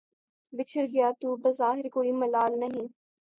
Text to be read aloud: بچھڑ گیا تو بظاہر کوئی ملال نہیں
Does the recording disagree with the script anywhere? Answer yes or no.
no